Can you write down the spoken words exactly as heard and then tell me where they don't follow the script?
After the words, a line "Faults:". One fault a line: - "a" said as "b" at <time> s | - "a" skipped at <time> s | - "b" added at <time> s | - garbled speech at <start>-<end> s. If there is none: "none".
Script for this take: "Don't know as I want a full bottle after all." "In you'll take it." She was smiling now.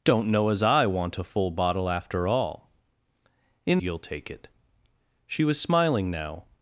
"Don't know as I want a full bottle after all." "In you'll take it." She was smiling now.
Faults:
none